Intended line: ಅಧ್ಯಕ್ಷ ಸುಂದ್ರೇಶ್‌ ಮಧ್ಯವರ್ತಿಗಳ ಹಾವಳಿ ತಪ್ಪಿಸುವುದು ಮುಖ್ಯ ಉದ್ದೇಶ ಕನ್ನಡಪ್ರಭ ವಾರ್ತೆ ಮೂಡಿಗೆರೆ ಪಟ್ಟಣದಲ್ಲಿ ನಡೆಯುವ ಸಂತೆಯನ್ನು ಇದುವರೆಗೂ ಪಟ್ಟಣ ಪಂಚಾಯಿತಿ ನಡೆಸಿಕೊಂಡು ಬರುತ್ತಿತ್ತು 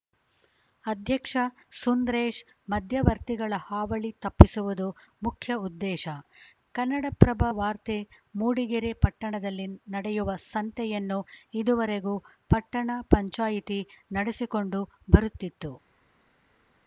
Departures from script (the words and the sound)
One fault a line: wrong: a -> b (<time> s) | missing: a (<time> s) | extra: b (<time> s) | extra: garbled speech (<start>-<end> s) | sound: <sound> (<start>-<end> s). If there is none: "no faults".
no faults